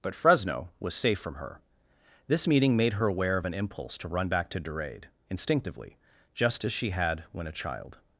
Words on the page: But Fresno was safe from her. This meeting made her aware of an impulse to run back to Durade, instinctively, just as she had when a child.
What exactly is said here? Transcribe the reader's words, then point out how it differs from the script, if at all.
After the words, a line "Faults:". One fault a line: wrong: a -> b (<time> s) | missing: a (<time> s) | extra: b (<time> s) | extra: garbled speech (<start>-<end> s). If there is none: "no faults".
But Fresno was safe from her. This meeting made her aware of an impulse to run back to Durade, instinctively, just as she had when a child.
Faults:
no faults